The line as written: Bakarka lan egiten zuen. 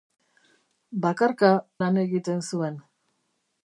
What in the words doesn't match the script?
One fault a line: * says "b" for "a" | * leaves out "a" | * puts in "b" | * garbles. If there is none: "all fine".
all fine